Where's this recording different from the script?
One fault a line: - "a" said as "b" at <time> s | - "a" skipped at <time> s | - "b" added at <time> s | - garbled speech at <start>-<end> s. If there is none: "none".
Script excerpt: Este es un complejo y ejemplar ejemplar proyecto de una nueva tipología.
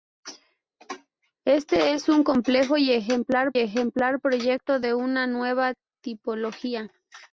none